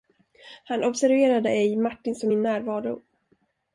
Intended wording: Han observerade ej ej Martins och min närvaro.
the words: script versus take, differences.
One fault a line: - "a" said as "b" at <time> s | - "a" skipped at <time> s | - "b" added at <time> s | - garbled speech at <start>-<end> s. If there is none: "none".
- "ej" skipped at 1.8 s